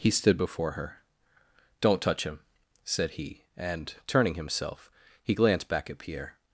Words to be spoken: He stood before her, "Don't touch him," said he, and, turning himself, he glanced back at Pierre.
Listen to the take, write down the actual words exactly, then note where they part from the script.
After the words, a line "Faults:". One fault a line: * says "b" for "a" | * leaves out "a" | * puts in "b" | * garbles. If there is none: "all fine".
He stood before her, "Don't touch him," said he, and, turning himself, he glanced back at Pierre.
Faults:
all fine